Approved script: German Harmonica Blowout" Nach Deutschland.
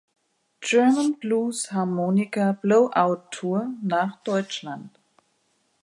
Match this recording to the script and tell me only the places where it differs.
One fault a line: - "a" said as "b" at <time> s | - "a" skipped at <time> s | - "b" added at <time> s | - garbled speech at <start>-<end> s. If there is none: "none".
- "Blues" added at 1.2 s
- "Tour" added at 3.3 s